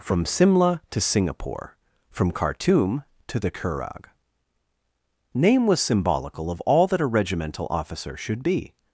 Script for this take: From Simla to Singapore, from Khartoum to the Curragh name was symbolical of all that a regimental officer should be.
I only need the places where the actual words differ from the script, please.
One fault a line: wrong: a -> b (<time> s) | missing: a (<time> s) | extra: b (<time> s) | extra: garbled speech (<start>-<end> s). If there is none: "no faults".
no faults